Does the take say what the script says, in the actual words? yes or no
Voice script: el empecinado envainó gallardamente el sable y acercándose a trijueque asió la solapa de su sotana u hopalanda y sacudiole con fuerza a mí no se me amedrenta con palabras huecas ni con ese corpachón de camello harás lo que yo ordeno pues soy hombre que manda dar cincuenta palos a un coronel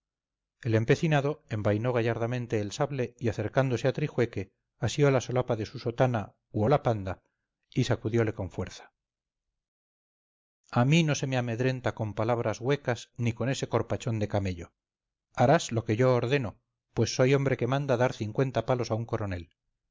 yes